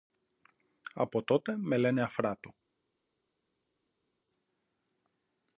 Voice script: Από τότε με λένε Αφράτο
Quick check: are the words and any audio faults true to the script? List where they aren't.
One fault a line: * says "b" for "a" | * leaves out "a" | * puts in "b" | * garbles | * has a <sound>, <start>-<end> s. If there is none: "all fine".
all fine